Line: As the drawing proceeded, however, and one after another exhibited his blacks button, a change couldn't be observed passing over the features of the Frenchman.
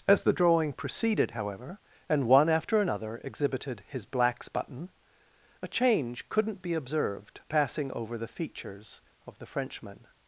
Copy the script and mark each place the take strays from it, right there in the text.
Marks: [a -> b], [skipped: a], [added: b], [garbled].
As the drawing proceeded, however, and one after another exhibited his blacks button, a change couldn't be observed passing over the features of the Frenchman.